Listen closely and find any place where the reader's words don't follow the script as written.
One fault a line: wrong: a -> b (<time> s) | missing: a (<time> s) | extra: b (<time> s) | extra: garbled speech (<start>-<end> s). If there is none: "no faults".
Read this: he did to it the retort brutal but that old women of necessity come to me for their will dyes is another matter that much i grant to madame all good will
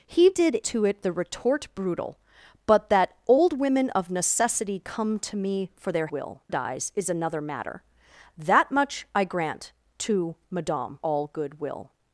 no faults